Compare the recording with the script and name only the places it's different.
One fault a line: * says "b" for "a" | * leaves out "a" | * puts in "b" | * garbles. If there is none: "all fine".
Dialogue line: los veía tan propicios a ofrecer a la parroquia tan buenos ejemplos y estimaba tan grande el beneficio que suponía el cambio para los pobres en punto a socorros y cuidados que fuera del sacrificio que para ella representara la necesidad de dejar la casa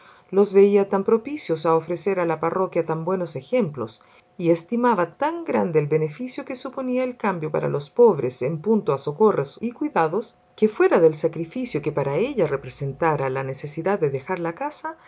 all fine